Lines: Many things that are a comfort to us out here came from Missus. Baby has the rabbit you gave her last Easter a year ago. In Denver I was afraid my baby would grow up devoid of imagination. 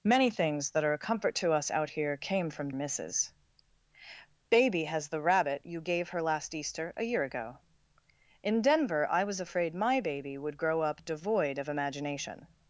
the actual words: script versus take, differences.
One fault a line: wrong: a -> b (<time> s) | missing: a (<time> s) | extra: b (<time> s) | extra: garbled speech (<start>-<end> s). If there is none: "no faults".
no faults